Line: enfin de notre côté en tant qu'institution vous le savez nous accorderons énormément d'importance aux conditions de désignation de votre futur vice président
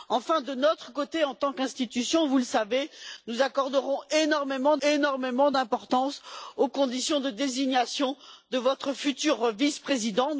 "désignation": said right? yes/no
yes